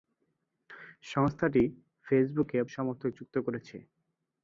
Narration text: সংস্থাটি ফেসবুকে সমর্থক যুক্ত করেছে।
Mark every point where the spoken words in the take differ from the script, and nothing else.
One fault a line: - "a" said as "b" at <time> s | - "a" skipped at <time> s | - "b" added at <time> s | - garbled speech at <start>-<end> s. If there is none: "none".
none